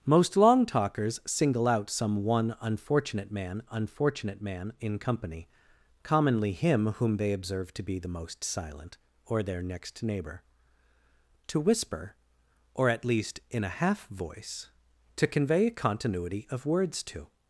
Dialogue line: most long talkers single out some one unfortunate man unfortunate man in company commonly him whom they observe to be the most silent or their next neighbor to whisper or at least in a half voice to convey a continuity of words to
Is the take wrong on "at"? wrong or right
right